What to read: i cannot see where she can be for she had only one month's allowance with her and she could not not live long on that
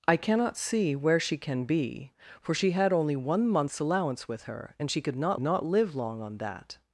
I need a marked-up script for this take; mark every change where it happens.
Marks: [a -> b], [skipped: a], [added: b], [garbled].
i cannot see where she can be for she had only one month's allowance with her and she could not not live long on that